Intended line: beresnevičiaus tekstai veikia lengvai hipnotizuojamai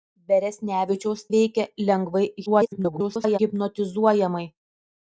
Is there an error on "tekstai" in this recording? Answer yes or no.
yes